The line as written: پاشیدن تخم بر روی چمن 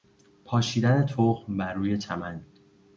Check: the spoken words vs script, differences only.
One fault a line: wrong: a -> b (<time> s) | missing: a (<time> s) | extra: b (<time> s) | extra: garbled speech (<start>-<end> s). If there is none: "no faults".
no faults